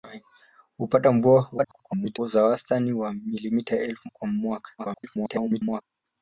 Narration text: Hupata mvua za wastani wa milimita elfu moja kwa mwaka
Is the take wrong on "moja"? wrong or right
wrong